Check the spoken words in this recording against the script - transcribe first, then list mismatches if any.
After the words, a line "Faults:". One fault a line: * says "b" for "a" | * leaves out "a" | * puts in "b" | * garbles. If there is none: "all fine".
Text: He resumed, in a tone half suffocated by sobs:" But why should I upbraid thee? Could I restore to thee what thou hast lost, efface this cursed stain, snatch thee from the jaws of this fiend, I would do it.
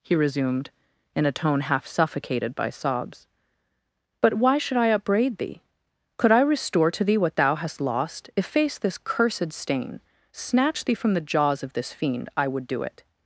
He resumed, in a tone half suffocated by sobs:" But why should I upbraid thee? Could I restore to thee what thou hast lost, efface this cursed stain, snatch thee from the jaws of this fiend, I would do it.
Faults:
all fine